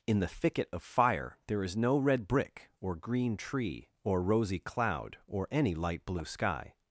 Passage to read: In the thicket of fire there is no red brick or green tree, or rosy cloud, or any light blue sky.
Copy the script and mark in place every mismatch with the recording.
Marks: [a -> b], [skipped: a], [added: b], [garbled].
In the thicket of fire there is no red brick or green tree, or rosy cloud, or any light blue sky.